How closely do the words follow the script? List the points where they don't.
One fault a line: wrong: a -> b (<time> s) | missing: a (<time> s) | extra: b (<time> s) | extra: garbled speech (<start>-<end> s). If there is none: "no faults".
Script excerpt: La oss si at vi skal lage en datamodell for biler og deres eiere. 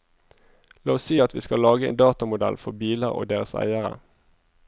no faults